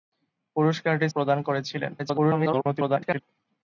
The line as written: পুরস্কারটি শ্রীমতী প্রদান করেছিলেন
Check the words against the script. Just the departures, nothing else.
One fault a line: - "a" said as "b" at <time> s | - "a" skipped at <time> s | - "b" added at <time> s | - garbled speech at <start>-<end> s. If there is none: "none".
- "শ্রীমতী" skipped at 1.1 s
- garbled speech at 2.0-3.2 s